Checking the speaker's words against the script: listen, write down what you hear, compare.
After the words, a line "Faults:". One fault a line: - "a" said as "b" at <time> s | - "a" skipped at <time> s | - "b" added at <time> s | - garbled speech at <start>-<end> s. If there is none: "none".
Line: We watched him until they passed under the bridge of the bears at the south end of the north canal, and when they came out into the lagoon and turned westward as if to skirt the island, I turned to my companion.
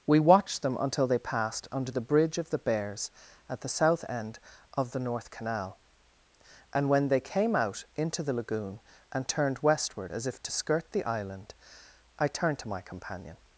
We watched them until they passed under the bridge of the bears at the south end of the north canal, and when they came out into the lagoon and turned westward as if to skirt the island, I turned to my companion.
Faults:
- "him" said as "them" at 0.6 s